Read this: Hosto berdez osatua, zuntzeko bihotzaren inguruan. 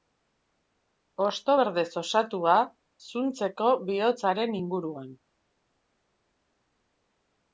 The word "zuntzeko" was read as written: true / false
true